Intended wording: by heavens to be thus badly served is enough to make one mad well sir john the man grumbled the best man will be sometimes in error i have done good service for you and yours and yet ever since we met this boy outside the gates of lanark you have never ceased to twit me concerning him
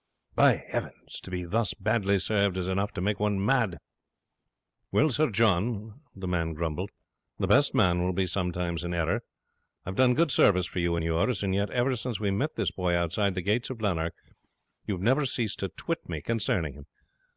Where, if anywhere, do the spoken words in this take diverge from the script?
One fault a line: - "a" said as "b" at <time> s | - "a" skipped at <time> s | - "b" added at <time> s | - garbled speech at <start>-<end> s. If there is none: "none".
none